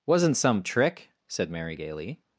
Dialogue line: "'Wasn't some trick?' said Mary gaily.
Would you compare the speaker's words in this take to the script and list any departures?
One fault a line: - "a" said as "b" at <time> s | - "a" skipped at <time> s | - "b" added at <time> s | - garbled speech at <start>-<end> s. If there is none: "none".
none